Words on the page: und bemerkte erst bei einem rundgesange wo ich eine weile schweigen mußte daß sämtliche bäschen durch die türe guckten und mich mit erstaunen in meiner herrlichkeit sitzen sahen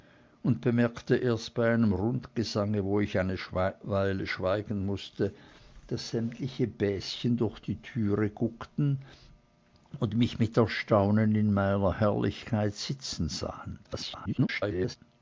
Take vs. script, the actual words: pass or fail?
fail